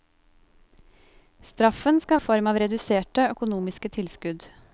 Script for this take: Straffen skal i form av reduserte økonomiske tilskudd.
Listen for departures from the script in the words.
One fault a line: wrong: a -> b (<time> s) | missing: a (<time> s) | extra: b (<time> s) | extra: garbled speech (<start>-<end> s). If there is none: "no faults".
no faults